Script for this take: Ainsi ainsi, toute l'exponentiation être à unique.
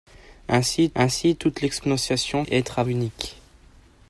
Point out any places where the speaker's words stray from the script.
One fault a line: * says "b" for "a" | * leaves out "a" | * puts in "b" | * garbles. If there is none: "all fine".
all fine